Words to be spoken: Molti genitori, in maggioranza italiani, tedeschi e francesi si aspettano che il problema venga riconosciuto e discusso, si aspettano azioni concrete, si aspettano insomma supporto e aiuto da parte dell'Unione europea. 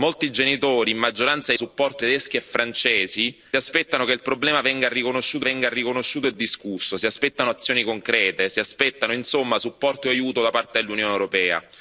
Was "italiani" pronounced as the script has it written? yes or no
no